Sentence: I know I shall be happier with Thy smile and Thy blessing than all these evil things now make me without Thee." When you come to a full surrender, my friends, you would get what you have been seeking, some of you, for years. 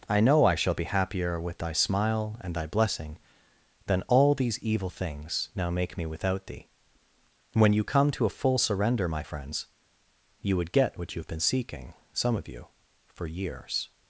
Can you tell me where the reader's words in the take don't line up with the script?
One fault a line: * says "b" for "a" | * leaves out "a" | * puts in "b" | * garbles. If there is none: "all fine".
all fine